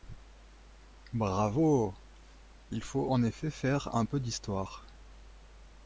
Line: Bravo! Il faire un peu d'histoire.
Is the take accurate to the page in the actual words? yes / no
no